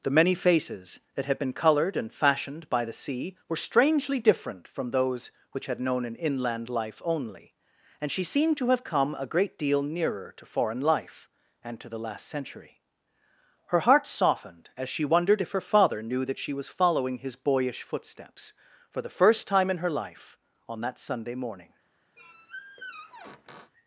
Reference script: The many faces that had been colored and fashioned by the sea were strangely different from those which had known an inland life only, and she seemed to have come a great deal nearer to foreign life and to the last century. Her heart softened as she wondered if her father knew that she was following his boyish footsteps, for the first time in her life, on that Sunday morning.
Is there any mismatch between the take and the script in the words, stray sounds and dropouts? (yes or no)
yes